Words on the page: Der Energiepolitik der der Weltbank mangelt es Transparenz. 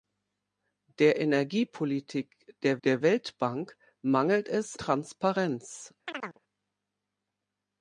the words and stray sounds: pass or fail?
fail